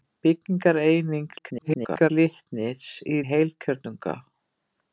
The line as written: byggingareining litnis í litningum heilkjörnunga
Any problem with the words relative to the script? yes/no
yes